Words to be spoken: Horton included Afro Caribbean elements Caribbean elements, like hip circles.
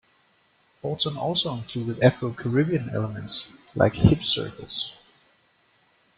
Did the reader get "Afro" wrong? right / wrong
right